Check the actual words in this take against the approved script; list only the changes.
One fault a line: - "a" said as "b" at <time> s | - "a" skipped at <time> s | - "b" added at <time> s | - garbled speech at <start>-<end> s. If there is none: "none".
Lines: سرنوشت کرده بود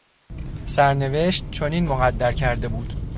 - "چنین مقدر" added at 1.5 s